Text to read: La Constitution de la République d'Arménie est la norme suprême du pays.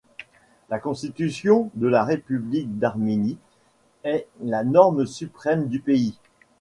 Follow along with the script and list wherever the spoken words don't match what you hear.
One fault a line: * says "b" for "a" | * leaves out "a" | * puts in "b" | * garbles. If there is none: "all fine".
all fine